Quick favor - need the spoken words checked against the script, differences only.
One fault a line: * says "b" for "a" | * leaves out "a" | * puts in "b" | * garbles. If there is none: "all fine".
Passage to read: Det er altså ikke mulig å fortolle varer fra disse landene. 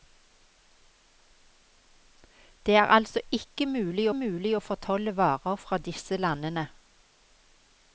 * puts in "mulig"